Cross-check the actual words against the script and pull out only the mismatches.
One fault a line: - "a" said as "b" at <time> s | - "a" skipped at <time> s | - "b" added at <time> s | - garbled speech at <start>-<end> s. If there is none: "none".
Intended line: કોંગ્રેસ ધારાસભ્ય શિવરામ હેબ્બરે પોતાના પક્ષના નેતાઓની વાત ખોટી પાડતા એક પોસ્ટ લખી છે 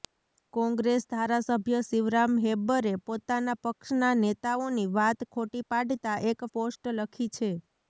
none